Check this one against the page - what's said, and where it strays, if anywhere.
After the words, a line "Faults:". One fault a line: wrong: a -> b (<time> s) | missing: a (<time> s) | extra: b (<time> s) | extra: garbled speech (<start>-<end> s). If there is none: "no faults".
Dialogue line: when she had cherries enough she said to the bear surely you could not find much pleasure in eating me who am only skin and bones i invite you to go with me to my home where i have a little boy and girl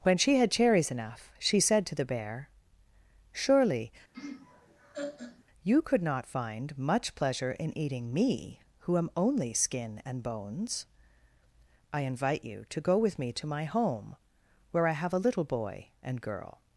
when she had cherries enough she said to the bear surely you could not find much pleasure in eating me who am only skin and bones i invite you to go with me to my home where i have a little boy and girl
Faults:
no faults